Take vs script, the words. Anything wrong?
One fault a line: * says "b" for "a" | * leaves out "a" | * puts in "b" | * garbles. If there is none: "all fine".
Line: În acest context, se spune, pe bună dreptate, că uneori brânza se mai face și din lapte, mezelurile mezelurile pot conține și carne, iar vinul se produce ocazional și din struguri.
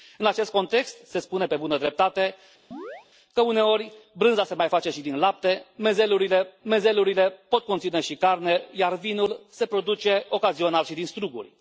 all fine